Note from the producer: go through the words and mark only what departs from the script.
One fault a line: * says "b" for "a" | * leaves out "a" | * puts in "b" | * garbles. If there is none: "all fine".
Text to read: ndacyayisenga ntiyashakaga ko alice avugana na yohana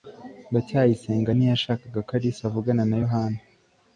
all fine